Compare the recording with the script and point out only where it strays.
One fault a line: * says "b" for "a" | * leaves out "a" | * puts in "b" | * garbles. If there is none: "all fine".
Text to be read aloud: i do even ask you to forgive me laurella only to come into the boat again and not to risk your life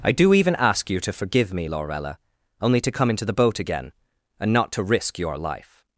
all fine